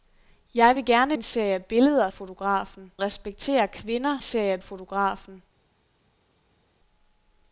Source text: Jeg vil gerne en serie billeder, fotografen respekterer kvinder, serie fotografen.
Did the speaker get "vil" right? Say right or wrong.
right